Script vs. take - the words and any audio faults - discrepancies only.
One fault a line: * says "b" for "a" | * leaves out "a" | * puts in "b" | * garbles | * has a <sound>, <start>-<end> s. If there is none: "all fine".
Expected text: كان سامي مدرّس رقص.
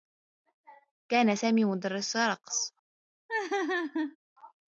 * has a laugh, 3.3-4.2 s